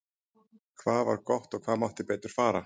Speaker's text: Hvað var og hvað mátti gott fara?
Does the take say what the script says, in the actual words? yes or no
no